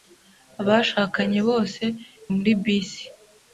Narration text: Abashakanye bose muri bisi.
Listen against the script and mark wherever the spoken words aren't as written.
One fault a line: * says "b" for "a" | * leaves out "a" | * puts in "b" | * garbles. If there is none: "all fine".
all fine